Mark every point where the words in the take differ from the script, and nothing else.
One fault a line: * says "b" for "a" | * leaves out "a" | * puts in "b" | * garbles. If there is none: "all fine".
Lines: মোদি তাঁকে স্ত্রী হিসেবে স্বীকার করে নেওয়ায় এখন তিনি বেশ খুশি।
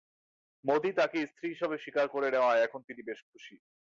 all fine